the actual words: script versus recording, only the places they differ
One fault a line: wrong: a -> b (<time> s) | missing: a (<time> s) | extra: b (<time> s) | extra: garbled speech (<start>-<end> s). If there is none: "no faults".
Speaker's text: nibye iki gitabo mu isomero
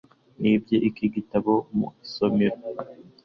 no faults